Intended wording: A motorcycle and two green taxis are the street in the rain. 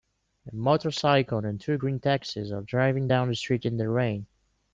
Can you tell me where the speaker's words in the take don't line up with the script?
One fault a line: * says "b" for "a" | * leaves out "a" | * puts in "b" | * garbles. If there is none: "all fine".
* puts in "driving down"